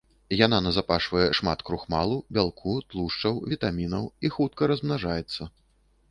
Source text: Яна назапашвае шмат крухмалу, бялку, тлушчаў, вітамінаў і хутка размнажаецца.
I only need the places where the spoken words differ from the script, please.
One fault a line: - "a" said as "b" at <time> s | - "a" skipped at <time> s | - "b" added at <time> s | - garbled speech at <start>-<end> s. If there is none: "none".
none